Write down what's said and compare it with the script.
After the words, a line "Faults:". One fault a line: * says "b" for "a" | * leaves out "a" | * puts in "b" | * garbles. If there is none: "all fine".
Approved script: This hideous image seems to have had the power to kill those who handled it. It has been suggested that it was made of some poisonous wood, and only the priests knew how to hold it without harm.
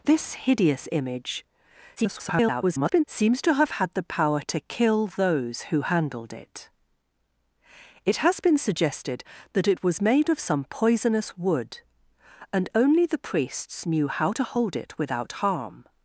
This hideous image [garbled] seems to have had the power to kill those who handled it. It has been suggested that it was made of some poisonous wood, and only the priests knew how to hold it without harm.
Faults:
* garbles